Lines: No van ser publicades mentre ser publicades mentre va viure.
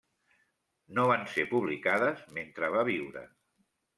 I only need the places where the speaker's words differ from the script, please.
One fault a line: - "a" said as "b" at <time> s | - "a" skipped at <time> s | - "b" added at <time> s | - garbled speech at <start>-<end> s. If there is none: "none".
- "ser publicades mentre" skipped at 2.7 s